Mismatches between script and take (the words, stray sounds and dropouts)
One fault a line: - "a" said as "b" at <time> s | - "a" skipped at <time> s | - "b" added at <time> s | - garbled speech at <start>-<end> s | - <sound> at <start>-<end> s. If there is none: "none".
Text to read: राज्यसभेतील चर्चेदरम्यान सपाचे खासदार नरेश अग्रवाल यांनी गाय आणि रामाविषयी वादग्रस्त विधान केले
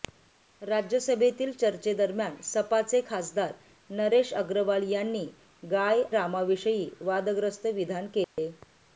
- "आणि" skipped at 6.0 s
- dropout at 8.2-8.4 s